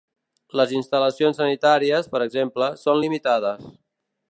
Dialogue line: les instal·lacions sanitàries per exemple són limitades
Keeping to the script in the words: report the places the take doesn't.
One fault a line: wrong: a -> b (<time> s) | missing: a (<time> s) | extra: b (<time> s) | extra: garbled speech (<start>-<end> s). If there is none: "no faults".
no faults